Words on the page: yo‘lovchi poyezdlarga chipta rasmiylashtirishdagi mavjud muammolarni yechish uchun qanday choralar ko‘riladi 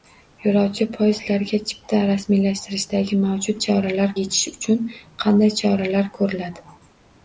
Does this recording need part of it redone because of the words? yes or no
yes